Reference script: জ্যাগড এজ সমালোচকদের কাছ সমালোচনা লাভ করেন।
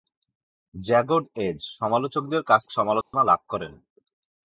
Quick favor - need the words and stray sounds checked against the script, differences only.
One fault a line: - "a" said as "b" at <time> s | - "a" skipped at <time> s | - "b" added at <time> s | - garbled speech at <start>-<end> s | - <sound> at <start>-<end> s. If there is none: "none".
- dropout at 3.0-3.1 s